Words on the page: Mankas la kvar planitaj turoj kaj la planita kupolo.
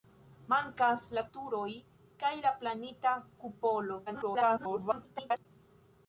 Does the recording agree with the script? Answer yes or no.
no